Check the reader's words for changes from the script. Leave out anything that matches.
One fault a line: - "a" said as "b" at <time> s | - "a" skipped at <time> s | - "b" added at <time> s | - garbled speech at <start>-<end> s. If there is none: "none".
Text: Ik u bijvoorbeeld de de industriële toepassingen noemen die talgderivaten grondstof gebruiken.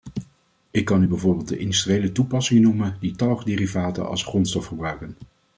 - "kan" added at 0.8 s
- "de" skipped at 1.6 s
- "als" added at 4.1 s